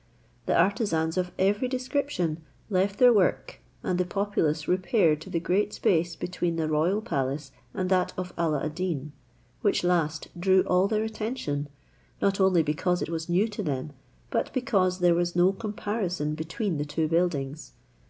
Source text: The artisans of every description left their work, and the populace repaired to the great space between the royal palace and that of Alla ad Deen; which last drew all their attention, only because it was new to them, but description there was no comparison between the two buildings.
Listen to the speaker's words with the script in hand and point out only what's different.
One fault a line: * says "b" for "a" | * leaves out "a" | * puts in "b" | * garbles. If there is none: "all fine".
* puts in "not"
* says "because" for "description"